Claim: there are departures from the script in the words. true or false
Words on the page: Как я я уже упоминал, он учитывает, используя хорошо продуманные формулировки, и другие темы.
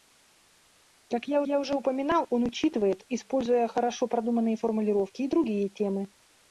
false